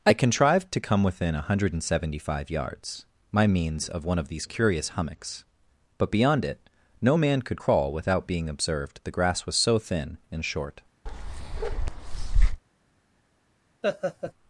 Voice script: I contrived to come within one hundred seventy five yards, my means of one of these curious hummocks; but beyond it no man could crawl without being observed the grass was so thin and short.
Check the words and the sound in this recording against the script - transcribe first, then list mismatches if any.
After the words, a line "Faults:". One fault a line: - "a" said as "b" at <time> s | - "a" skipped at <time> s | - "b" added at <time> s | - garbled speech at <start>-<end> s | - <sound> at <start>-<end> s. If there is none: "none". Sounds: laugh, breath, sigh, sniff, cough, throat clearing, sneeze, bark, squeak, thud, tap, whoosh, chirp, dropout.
I contrived to come within one hundred seventy five yards, my means of one of these curious hummocks; but beyond it no man could crawl without being observed the grass was so thin and short.
Faults:
- bark at 11.1-12.6 s
- laugh at 13.8-14.3 s